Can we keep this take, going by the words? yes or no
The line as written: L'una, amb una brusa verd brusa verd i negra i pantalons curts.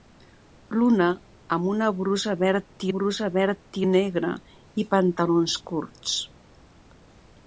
yes